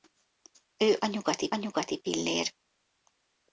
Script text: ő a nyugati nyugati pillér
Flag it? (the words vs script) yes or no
no